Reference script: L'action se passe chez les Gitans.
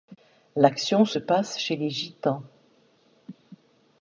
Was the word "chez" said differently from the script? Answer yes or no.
no